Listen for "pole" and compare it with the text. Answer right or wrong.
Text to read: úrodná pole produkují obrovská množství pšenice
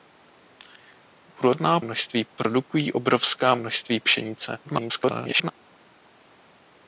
wrong